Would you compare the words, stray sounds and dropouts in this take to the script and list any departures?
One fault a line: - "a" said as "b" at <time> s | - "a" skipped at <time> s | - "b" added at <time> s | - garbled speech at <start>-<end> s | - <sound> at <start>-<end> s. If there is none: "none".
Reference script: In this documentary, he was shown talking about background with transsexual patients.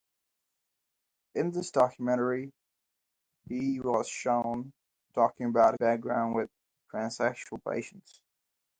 none